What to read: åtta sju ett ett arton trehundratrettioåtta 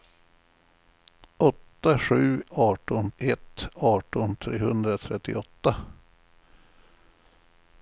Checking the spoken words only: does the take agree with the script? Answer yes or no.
no